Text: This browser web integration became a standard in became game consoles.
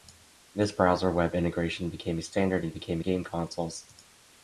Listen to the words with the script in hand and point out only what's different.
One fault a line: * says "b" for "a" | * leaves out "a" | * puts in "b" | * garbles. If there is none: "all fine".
all fine